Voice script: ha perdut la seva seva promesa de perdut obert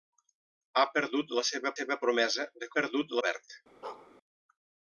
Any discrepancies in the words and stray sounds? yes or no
yes